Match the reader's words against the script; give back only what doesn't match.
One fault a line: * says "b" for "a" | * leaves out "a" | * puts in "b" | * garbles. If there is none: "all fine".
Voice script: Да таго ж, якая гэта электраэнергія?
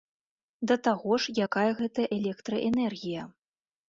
all fine